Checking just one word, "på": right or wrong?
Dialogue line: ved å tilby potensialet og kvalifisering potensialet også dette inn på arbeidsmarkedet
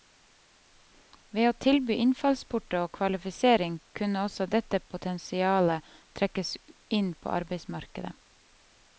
right